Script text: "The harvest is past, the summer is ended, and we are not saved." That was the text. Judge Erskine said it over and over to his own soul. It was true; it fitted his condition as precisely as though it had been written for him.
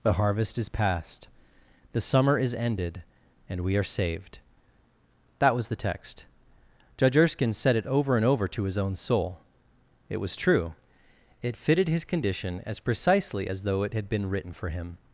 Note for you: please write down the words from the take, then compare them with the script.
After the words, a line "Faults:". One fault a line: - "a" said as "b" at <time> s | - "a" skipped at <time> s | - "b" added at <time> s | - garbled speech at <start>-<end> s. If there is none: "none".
"The harvest is past, the summer is ended, and we are saved." That was the text. Judge Erskine said it over and over to his own soul. It was true; it fitted his condition as precisely as though it had been written for him.
Faults:
- "not" skipped at 3.8 s